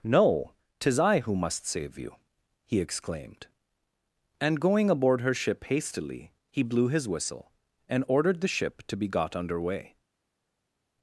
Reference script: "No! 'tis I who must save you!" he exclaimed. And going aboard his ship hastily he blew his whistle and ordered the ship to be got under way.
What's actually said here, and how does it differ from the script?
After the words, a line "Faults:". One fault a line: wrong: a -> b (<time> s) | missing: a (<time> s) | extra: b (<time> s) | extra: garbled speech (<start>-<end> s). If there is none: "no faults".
"No! 'tis I who must save you!" he exclaimed. And going aboard her ship hastily he blew his whistle and ordered the ship to be got under way.
Faults:
wrong: his -> her (5.2 s)